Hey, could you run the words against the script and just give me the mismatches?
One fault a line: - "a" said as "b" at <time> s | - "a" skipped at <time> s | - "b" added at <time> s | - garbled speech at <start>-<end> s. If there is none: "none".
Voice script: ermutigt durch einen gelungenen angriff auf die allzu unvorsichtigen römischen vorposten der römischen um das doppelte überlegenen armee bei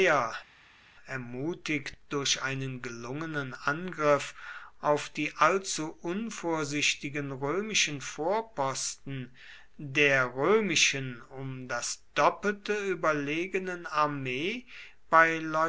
none